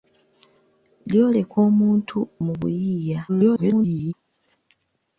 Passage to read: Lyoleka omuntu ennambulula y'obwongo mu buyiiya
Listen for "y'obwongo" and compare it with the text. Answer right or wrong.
wrong